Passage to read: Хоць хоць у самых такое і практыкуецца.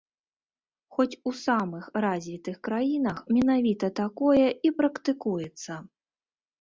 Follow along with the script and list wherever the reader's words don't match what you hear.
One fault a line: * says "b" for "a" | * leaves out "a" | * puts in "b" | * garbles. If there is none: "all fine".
* leaves out "хоць"
* puts in "развітых краінах менавіта"